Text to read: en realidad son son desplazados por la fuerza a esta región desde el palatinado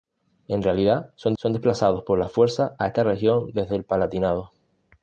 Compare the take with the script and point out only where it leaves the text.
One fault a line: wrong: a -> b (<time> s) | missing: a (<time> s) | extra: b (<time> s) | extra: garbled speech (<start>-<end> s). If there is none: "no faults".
no faults